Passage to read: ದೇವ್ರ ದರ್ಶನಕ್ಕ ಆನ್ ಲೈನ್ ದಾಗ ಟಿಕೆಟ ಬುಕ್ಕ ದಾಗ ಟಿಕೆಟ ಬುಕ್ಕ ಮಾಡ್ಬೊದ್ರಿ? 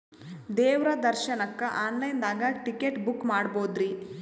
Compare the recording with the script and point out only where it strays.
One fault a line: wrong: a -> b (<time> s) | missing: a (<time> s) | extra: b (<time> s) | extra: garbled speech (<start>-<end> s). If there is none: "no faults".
missing: ದಾಗ ಟಿಕೆಟ ಬುಕ್ಕ (3.3 s)